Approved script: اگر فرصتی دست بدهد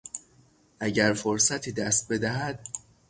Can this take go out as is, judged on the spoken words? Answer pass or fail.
pass